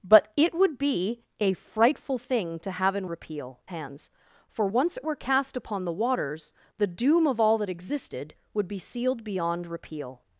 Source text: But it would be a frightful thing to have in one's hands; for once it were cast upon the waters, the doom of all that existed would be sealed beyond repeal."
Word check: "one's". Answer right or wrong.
wrong